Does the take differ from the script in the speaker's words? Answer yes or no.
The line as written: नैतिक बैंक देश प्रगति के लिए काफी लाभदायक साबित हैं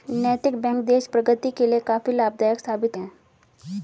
no